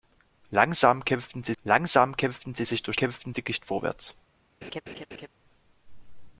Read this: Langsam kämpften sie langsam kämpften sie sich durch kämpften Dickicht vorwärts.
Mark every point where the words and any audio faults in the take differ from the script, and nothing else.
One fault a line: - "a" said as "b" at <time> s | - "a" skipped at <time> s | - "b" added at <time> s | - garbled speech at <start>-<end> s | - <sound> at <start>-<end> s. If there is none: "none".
- laugh at 4.6-5.3 s